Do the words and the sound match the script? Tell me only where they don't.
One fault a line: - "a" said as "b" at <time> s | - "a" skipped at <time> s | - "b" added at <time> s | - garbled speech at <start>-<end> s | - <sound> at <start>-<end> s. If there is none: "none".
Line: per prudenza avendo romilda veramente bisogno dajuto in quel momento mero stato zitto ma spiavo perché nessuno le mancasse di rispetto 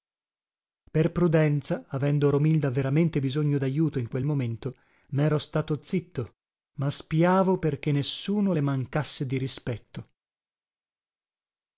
none